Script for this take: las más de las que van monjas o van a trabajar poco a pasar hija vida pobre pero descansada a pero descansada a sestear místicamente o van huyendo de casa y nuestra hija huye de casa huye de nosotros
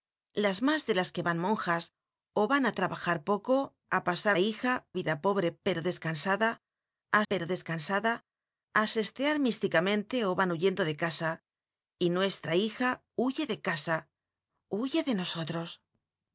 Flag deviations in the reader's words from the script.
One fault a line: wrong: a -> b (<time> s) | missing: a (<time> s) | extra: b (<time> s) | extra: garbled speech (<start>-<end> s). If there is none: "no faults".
no faults